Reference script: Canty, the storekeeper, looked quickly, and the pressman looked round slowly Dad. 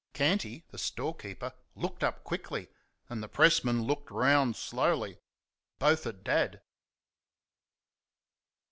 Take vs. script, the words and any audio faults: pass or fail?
fail